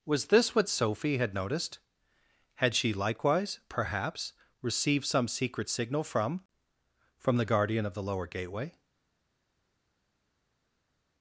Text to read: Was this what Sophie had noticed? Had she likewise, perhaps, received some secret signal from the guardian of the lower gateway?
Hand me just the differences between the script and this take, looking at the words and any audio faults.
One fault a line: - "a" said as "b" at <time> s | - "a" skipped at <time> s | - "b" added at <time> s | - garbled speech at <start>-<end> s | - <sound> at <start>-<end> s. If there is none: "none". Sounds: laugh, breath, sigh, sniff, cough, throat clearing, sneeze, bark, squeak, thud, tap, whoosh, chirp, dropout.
- "from" added at 7.2 s